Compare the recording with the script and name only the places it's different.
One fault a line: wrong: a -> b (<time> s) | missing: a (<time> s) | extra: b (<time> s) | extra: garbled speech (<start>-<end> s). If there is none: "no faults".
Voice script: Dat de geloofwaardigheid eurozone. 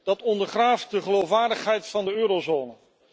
extra: ondergraaft (0.2 s)
extra: van de (1.9 s)